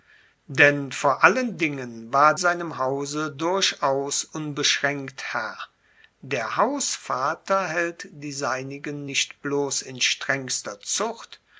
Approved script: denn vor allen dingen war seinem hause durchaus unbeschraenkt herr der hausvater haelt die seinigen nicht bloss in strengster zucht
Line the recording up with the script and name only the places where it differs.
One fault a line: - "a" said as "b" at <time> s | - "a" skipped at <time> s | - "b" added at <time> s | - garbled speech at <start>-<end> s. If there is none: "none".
none